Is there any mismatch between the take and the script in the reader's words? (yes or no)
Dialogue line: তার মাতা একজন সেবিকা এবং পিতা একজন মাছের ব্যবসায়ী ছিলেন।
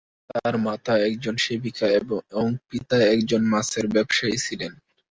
no